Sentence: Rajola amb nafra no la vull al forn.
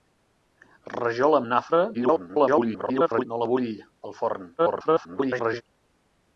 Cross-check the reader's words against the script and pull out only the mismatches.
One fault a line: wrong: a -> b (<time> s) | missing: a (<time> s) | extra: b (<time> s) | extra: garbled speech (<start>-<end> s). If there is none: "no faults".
extra: garbled speech (1.9-3.3 s)
extra: garbled speech (4.6-5.6 s)